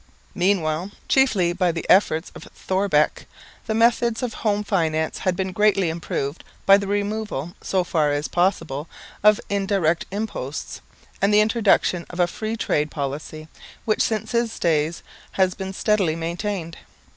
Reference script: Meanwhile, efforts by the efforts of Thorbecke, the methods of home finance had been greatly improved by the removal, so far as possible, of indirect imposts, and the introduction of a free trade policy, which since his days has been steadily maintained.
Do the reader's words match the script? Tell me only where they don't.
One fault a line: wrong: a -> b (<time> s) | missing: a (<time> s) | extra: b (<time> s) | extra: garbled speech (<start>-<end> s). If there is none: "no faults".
wrong: efforts -> chiefly (1.1 s)